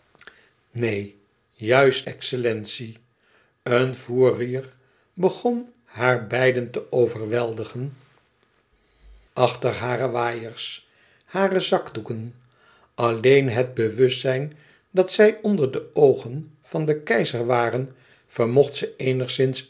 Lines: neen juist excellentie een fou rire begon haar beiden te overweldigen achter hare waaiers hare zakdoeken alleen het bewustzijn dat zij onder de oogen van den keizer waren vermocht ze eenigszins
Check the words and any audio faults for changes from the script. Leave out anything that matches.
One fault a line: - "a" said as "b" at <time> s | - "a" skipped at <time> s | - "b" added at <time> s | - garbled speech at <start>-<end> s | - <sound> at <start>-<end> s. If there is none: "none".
none